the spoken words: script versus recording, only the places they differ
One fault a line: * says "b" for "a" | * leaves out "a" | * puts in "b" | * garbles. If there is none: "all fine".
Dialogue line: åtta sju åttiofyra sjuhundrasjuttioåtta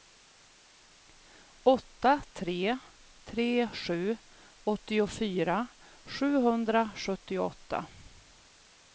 * puts in "tre tre"